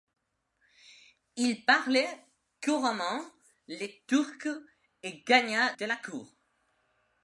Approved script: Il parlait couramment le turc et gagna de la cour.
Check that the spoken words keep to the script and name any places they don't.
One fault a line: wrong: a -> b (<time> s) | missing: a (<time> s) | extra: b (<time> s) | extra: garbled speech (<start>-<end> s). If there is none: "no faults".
no faults